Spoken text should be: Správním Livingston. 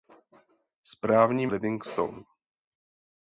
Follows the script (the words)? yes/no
yes